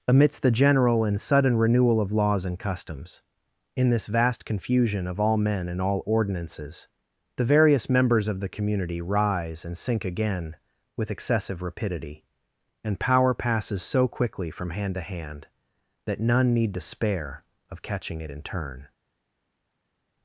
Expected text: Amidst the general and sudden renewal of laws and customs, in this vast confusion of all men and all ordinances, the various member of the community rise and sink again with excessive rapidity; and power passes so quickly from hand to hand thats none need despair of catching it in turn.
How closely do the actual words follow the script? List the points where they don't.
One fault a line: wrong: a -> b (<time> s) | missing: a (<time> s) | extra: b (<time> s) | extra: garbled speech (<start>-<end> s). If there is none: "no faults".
wrong: member -> members (7.9 s)
wrong: thats -> that (16.1 s)